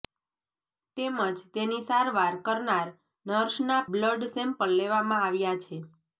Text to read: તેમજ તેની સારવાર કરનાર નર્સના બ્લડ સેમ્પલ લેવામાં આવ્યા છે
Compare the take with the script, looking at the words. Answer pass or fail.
pass